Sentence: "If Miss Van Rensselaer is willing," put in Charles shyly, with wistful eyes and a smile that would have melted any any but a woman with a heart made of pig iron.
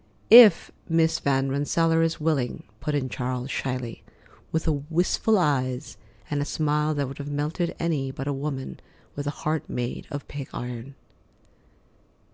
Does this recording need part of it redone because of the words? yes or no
yes